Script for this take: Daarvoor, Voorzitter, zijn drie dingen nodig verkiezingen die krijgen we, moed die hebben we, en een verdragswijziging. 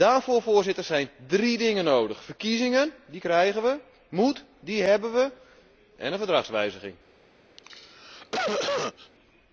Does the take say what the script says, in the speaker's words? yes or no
yes